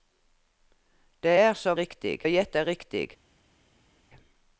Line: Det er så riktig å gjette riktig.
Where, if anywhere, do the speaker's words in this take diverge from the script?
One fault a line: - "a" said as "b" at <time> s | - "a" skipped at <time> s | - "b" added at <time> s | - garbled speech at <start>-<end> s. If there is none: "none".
none